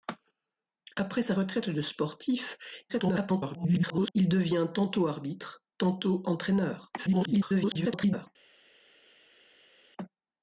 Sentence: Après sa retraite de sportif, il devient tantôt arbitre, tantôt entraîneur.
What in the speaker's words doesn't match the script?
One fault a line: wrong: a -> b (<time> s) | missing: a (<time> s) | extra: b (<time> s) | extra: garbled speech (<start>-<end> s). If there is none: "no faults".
extra: garbled speech (2.9-4.1 s)
extra: garbled speech (7.0-8.3 s)